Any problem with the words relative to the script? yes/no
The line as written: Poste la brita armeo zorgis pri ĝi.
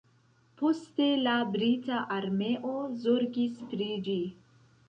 no